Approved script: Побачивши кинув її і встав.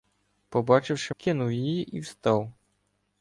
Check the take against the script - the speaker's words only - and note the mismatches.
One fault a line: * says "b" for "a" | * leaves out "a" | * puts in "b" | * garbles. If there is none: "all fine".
all fine